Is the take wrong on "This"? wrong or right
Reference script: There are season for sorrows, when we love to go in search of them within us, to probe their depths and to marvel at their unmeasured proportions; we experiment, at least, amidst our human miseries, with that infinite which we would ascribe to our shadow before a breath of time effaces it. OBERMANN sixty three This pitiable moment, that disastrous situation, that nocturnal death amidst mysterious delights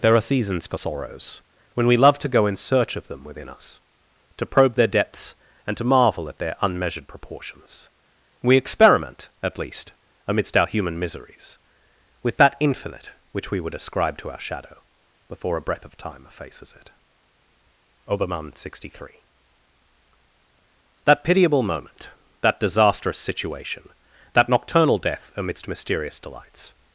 wrong